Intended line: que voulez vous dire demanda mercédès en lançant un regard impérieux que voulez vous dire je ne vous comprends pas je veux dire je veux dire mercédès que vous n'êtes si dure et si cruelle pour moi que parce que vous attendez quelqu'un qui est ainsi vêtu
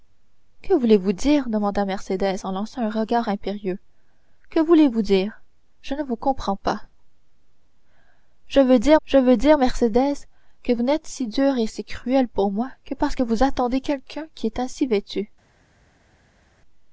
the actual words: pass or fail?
pass